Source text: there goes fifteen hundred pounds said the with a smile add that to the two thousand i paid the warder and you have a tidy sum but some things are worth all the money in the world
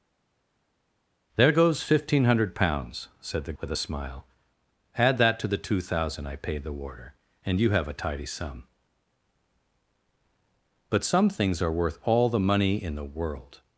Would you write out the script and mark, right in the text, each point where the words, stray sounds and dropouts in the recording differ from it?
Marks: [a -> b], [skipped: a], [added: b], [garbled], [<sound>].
there goes fifteen hundred pounds said the with a smile add that to the two thousand i paid the warder and you have a tidy sum but some things are worth all the money in the world